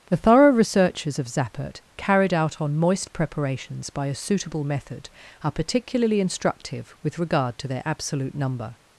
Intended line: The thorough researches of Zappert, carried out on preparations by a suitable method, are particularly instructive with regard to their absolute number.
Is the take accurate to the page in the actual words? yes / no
no